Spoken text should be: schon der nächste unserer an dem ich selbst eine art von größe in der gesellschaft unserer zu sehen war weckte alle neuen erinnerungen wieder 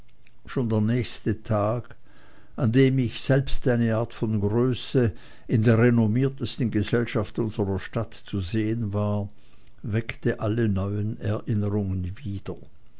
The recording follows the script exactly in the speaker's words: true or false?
false